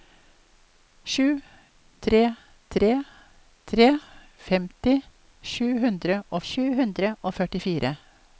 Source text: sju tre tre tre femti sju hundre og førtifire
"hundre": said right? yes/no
yes